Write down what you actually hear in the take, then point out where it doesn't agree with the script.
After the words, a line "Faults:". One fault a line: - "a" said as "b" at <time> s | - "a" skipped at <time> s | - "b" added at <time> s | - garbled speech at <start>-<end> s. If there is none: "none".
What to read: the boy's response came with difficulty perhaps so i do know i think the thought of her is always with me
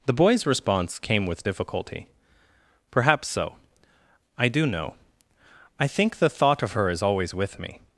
the boy's response came with difficulty perhaps so i do know i think the thought of her is always with me
Faults:
none